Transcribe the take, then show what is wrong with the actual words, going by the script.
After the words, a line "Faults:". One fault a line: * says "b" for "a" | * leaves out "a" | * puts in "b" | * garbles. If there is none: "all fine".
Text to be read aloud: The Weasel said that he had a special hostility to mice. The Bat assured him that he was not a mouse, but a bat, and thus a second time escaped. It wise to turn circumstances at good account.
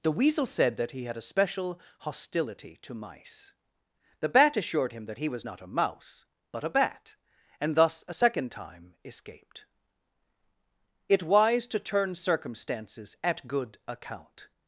The Weasel said that he had a special hostility to mice. The Bat assured him that he was not a mouse, but a bat, and thus a second time escaped. It wise to turn circumstances at good account.
Faults:
all fine